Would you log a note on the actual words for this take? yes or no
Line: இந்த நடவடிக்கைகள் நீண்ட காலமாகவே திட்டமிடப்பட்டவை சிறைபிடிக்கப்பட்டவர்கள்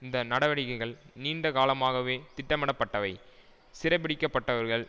no